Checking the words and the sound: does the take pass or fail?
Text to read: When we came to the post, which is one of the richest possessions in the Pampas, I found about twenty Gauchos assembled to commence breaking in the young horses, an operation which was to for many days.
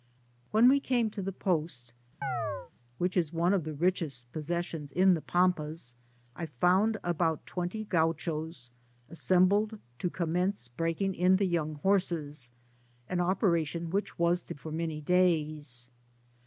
fail